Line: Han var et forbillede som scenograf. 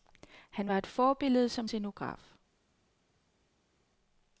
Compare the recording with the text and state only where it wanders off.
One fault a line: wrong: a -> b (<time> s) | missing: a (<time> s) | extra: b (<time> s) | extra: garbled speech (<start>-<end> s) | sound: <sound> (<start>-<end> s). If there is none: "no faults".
no faults